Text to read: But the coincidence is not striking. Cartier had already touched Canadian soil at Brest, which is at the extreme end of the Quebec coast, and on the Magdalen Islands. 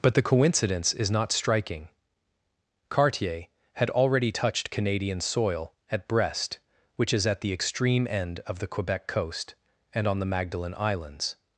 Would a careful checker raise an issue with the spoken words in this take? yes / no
no